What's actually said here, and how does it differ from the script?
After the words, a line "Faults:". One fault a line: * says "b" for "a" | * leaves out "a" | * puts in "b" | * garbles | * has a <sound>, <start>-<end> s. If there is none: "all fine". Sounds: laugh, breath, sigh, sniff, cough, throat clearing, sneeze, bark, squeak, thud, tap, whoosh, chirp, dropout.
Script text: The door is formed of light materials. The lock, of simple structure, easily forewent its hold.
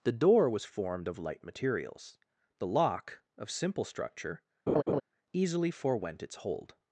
The door was formed of light materials. The lock, of simple structure, easily forewent its hold.
Faults:
* says "was" for "is"
* has a laugh, 4.7-5.0 s